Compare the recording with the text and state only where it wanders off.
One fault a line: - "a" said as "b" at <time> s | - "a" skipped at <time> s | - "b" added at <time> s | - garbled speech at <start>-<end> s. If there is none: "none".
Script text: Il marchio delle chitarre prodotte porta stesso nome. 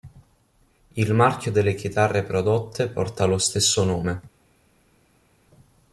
- "lo" added at 3.2 s